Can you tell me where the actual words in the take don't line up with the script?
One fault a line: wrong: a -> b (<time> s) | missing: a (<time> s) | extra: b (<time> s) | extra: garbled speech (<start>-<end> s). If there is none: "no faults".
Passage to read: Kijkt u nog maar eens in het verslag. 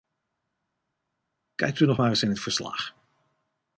no faults